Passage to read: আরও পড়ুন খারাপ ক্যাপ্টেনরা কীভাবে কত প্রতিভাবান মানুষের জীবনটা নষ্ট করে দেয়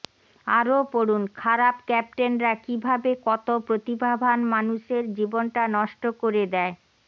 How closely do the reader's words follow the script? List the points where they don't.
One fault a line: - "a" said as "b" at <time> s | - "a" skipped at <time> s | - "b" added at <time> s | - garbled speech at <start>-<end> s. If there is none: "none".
none